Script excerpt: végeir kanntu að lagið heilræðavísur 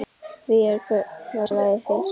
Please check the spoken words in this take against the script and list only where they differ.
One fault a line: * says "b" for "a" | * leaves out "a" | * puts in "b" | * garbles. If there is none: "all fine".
all fine